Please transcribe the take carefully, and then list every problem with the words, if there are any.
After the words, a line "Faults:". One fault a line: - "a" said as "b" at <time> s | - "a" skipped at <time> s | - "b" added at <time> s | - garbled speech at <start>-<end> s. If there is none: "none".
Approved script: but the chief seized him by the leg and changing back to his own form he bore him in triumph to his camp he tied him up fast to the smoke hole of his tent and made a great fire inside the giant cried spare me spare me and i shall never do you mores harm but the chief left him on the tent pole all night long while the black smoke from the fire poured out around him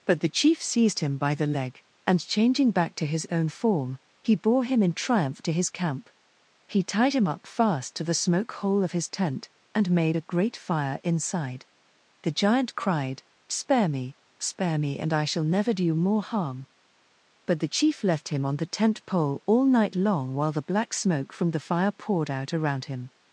but the chief seized him by the leg and changing back to his own form he bore him in triumph to his camp he tied him up fast to the smoke hole of his tent and made a great fire inside the giant cried spare me spare me and i shall never do you more harm but the chief left him on the tent pole all night long while the black smoke from the fire poured out around him
Faults:
- "mores" said as "more" at 15.9 s